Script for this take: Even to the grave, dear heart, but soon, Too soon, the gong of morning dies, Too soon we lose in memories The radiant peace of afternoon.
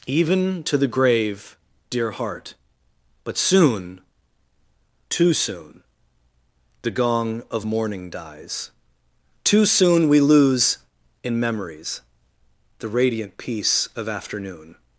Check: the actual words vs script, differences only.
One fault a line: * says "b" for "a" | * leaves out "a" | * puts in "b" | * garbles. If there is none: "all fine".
all fine